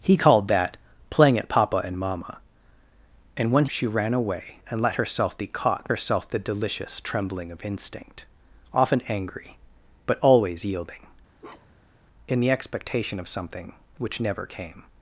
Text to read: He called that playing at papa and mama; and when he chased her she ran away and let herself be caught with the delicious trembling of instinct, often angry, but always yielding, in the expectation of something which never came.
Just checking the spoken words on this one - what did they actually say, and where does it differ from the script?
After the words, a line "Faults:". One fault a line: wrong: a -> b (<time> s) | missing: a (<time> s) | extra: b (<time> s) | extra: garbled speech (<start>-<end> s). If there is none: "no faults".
He called that playing at papa and mama; and when she ran away and let herself be caught herself the delicious trembling of instinct, often angry, but always yielding, in the expectation of something which never came.
Faults:
missing: he chased her (3.6 s)
wrong: with -> herself (5.9 s)